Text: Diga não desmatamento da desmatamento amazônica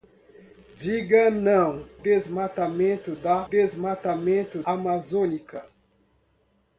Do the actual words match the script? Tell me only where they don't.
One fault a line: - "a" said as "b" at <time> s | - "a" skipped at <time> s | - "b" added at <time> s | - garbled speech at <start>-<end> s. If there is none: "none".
none